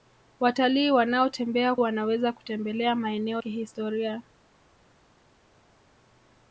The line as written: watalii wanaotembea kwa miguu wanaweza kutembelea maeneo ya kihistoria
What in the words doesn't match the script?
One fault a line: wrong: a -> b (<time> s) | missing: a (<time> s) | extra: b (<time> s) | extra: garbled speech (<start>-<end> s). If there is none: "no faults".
missing: kwa miguu (1.8 s)
missing: ya (3.4 s)